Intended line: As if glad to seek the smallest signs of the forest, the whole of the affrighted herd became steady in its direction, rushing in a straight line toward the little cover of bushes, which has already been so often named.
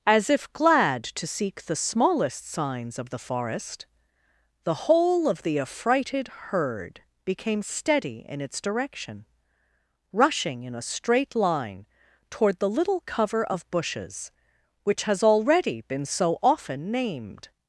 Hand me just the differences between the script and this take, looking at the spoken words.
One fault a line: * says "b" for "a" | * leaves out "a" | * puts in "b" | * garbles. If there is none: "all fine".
all fine